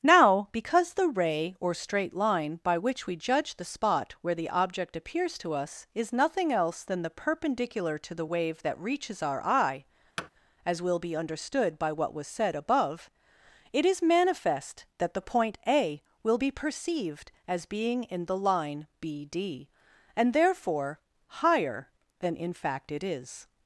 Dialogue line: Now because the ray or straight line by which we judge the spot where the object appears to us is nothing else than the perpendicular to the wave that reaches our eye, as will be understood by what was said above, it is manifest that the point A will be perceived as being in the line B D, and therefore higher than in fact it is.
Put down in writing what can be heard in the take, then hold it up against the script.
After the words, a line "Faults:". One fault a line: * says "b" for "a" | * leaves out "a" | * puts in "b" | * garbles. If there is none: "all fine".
Now because the ray or straight line by which we judge the spot where the object appears to us is nothing else than the perpendicular to the wave that reaches our eye, as will be understood by what was said above, it is manifest that the point A will be perceived as being in the line B D, and therefore higher than in fact it is.
Faults:
all fine